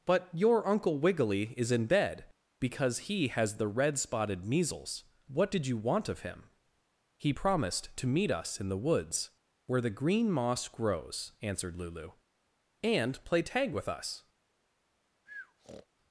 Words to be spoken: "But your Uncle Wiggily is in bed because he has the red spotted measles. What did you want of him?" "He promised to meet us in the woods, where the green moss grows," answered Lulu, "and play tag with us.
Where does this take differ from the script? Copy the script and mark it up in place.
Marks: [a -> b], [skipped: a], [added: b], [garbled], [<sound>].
"But your Uncle Wiggily is in bed because he has the red spotted measles. What did you want of him?" "He promised to meet us in the woods, where the green moss grows," answered Lulu, "and play tag with us. [breath]